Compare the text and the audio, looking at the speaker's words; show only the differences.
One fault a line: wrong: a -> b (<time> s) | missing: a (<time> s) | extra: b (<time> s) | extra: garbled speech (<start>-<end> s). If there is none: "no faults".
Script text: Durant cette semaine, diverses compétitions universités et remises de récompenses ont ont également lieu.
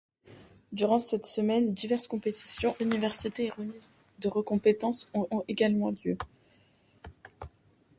no faults